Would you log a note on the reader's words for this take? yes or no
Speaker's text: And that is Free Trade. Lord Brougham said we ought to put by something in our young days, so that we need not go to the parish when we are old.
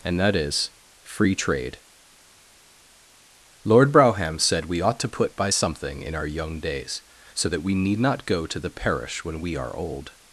no